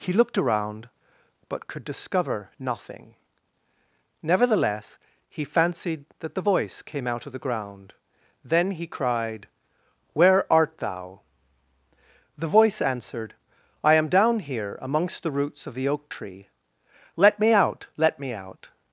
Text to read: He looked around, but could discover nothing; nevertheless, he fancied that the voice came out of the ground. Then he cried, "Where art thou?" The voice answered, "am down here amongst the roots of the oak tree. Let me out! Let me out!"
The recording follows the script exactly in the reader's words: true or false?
false